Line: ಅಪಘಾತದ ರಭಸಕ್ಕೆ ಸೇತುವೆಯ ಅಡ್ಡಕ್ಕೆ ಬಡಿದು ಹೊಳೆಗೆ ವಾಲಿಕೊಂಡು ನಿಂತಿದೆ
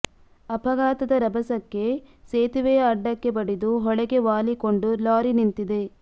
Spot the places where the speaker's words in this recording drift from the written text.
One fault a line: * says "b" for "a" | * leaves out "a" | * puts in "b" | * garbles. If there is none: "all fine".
* puts in "ಲಾರಿ"